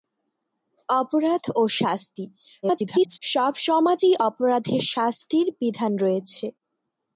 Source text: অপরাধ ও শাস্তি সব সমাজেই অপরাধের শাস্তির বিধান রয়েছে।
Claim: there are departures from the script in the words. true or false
true